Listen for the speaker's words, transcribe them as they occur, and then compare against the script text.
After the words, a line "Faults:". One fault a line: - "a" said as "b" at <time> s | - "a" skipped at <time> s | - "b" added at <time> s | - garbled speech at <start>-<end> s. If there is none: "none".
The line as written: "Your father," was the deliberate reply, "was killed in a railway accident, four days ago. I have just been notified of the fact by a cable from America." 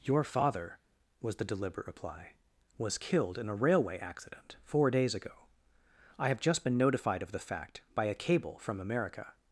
"Your father," was the deliberate reply, "was killed in a railway accident, four days ago. I have just been notified of the fact by a cable from America."
Faults:
none